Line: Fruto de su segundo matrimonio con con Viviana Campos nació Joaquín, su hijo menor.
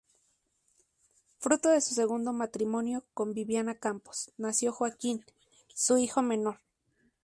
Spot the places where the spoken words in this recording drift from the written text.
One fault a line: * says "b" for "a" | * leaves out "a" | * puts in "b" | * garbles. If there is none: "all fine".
* leaves out "con"